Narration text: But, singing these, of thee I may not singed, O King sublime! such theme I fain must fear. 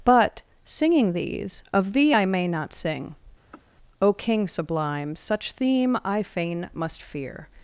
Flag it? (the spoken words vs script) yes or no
yes